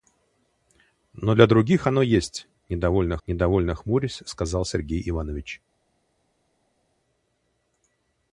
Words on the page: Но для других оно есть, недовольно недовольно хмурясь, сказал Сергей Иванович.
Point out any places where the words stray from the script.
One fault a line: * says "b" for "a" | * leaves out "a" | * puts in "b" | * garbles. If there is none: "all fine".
all fine